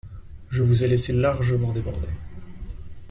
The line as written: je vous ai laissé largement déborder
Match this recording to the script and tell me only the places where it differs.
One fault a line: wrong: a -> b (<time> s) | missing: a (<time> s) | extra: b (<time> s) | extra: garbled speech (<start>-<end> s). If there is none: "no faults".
no faults